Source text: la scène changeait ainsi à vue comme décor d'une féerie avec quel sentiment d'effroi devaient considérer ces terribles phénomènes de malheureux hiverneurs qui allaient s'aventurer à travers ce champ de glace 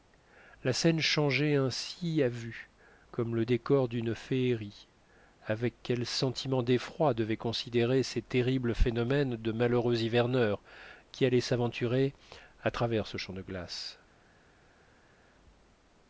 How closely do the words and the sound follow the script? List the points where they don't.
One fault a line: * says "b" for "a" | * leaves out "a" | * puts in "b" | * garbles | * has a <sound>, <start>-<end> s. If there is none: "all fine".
* puts in "le"